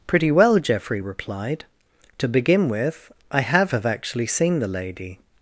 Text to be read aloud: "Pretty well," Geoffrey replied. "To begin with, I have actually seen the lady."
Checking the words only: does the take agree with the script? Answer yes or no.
no